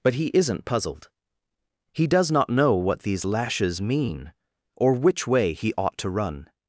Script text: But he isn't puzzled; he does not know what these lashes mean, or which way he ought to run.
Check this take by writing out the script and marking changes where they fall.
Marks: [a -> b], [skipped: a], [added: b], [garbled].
But he isn't puzzled; he does not know what these lashes mean, or which way he ought to run.